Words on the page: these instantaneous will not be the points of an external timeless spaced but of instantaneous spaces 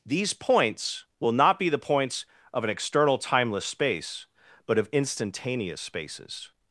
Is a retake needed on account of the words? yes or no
yes